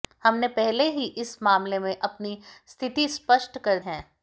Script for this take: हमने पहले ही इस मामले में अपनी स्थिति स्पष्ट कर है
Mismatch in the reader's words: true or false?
false